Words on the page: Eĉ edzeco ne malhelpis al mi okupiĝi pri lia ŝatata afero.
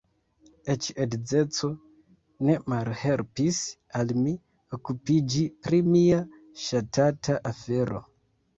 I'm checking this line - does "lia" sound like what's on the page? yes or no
no